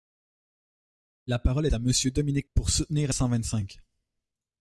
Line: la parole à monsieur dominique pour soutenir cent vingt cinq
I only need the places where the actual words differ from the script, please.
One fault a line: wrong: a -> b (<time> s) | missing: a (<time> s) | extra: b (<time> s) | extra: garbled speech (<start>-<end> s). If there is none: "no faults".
no faults